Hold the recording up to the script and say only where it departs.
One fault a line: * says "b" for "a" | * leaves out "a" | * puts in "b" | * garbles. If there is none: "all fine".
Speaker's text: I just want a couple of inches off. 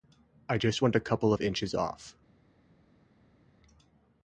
all fine